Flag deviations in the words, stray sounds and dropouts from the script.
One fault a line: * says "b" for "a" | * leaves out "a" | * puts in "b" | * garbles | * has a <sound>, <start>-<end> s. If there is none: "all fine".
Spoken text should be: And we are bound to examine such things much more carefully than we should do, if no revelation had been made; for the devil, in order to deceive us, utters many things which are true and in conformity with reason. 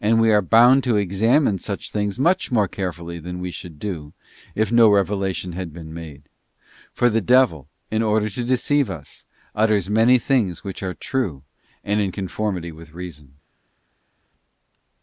all fine